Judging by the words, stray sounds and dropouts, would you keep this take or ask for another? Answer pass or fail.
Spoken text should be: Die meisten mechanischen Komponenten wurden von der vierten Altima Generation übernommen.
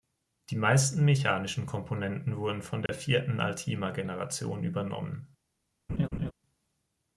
fail